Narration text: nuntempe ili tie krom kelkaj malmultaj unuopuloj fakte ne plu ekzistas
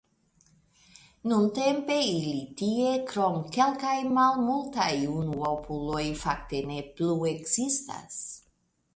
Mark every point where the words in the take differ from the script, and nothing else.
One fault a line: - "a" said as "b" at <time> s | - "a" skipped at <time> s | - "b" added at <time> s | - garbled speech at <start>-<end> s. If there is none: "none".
none